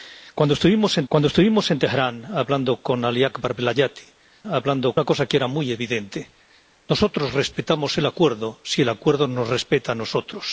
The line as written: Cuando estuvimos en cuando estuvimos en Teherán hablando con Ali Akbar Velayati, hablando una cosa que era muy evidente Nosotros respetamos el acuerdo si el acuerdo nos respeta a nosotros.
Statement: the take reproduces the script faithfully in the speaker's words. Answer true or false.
true